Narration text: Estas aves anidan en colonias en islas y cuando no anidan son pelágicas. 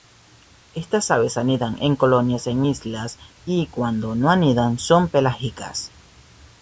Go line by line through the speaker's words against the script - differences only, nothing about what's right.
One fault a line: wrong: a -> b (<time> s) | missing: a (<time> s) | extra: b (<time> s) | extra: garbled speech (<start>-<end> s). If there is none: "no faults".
no faults